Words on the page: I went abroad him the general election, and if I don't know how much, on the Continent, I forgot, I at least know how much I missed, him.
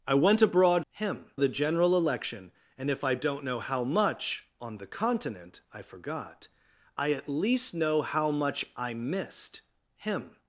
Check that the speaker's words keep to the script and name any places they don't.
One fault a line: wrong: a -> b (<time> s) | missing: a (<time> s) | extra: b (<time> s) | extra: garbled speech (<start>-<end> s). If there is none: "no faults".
no faults